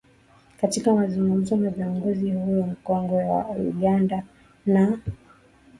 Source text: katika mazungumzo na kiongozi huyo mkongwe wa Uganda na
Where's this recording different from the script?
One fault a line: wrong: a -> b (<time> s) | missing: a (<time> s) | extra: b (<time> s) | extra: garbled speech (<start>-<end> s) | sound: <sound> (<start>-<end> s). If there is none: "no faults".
no faults